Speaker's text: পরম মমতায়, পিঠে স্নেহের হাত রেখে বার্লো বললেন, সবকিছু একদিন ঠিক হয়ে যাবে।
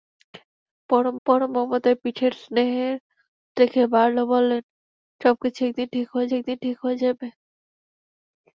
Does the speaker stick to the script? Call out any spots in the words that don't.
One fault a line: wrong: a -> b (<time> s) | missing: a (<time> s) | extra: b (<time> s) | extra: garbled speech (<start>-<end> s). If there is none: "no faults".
extra: পরম (1.3 s)
missing: হাত (3.0 s)
extra: একদিন ঠিক হয়ে (6.4 s)